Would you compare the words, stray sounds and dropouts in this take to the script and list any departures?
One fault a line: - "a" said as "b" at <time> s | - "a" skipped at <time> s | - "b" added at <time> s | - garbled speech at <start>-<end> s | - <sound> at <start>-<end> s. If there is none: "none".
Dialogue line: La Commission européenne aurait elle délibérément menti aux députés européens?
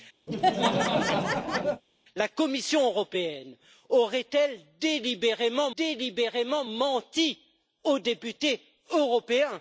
- laugh at 0.3-1.8 s
- "délibérément" added at 5.8 s